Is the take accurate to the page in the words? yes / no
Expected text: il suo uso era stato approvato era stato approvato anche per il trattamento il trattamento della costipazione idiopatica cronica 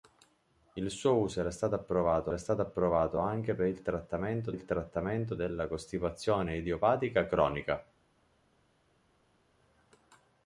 yes